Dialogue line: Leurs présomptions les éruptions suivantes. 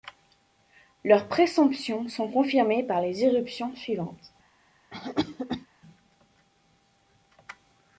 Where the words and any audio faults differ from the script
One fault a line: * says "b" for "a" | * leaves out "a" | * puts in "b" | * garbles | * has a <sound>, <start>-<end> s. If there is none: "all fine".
* puts in "sont confirmées par"
* has a cough, 4.9-5.7 s